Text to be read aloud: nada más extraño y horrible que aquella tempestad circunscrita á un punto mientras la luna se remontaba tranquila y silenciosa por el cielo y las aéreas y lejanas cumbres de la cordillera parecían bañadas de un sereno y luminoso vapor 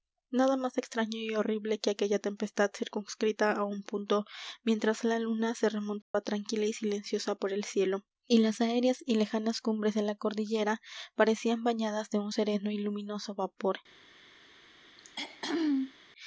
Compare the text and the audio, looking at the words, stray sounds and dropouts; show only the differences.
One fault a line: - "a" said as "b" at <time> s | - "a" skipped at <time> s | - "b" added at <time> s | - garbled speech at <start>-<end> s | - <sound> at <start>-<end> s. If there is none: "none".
- dropout at 6.0-6.1 s
- throat clearing at 15.0-15.9 s